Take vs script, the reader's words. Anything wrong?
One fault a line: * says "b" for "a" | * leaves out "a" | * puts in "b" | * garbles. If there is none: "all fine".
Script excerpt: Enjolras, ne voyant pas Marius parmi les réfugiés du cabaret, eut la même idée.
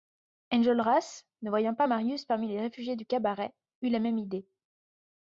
all fine